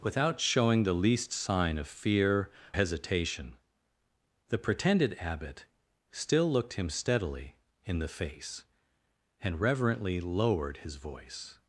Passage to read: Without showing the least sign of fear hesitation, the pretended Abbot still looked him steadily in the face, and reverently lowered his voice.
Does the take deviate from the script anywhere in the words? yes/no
no